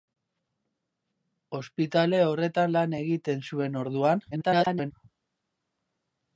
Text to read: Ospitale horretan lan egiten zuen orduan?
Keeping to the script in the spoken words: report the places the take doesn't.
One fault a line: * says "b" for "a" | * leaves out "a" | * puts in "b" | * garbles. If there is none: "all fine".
* garbles